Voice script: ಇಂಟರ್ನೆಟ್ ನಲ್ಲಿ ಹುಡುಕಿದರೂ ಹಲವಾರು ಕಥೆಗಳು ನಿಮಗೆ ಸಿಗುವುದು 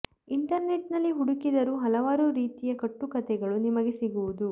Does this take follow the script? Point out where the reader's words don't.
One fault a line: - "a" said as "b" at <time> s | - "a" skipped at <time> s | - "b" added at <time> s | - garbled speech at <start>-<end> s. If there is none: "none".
- "ರೀತಿಯ ಕಟ್ಟು" added at 2.3 s